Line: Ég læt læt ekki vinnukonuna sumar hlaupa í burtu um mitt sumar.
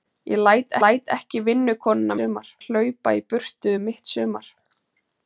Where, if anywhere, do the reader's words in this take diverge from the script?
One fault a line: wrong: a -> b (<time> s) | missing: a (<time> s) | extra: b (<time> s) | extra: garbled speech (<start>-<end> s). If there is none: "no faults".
no faults